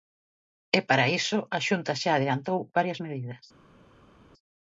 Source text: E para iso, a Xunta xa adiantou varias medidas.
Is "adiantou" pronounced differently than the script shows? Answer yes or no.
no